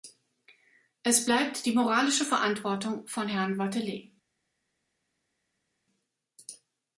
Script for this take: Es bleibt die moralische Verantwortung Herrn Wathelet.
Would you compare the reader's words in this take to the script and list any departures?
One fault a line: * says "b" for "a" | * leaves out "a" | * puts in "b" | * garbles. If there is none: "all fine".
* puts in "von"